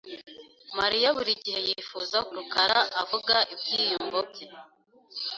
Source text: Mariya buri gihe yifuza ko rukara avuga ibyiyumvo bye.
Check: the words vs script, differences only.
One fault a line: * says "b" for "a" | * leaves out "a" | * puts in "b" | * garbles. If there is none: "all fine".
* leaves out "ko"